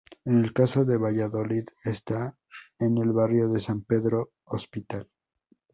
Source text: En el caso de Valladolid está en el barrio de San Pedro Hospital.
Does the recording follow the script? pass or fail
pass